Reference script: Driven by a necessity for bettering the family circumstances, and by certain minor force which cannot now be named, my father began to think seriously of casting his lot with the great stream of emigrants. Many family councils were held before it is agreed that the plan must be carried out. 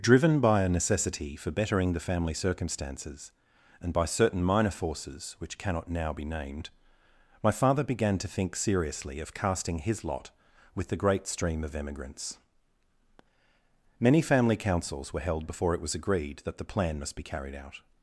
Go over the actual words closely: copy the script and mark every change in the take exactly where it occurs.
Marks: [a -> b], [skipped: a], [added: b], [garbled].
Driven by a necessity for bettering the family circumstances, and by certain minor [force -> forces] which cannot now be named, my father began to think seriously of casting his lot with the great stream of emigrants. Many family councils were held before it [is -> was] agreed that the plan must be carried out.